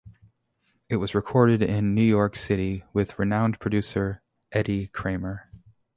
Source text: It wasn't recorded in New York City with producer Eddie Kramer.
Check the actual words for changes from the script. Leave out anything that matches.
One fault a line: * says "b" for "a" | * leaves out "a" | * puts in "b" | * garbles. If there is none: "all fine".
* says "was" for "wasn't"
* puts in "renowned"